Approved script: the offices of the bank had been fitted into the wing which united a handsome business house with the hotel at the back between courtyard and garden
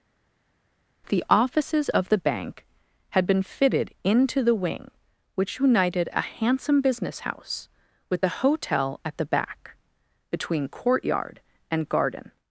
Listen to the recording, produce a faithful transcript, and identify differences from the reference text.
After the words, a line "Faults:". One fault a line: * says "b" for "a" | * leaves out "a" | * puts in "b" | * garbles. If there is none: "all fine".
the offices of the bank had been fitted into the wing which united a handsome business house with the hotel at the back between courtyard and garden
Faults:
all fine